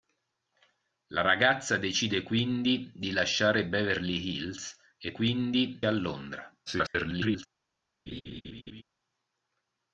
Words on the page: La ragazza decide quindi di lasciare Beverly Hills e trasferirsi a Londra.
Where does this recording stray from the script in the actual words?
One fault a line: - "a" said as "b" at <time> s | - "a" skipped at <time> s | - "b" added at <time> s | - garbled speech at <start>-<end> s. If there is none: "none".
- "trasferirsi" said as "quindi" at 5.1 s
- garbled speech at 6.7-7.5 s